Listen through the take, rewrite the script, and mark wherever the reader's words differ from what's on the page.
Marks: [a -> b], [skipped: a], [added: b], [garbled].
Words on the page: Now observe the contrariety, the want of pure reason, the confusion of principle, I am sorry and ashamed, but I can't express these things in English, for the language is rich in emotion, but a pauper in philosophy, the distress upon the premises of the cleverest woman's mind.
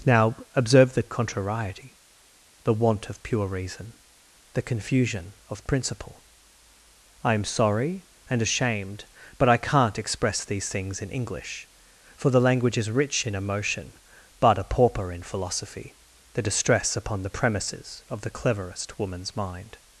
Now observe the contrariety, the want of pure reason, the confusion of principle, I am sorry and ashamed, but I can't express these things in English, for the language is rich in emotion, but a pauper in philosophy, the distress upon the premises of the cleverest woman's mind.